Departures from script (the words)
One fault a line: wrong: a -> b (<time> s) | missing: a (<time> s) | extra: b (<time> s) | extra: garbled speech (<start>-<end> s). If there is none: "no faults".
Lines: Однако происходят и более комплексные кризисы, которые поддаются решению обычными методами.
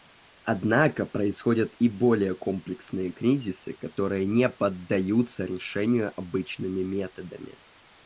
extra: не (4.3 s)